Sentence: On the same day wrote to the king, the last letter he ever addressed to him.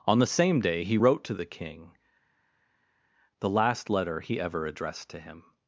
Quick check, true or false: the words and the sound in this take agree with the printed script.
false